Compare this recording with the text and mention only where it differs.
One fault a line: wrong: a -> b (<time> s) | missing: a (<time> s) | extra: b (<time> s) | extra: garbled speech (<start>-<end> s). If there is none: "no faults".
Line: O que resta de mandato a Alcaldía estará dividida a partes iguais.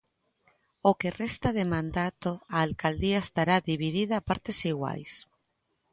no faults